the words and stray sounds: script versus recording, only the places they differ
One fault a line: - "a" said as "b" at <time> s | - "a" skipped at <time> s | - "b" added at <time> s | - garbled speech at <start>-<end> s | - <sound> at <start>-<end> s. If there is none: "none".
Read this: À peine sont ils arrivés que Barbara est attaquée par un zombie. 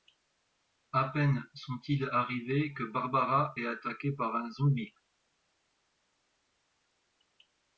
none